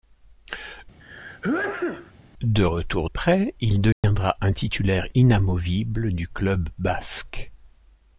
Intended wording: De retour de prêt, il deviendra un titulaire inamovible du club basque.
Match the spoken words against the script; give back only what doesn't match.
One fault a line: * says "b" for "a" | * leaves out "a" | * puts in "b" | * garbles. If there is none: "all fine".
* leaves out "de"